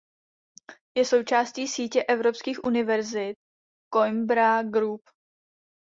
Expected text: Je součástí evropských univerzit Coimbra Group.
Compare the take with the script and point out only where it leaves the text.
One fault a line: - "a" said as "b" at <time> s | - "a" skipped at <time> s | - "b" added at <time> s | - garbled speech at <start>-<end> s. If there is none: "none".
- "sítě" added at 1.7 s